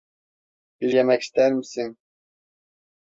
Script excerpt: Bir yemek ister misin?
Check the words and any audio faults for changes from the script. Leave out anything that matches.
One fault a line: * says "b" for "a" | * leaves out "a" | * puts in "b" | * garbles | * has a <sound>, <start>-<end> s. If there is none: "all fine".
all fine